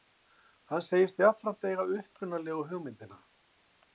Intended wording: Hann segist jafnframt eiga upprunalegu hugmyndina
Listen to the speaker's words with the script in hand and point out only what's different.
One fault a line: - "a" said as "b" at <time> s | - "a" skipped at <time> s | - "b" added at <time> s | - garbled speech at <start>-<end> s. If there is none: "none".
none